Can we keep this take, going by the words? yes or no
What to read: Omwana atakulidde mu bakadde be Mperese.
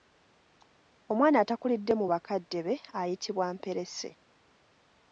no